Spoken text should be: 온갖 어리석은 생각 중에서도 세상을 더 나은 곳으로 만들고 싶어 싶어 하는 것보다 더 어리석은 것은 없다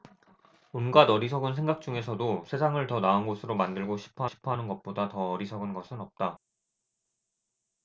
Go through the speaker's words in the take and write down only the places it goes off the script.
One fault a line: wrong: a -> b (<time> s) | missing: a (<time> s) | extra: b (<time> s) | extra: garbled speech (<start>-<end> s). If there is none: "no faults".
no faults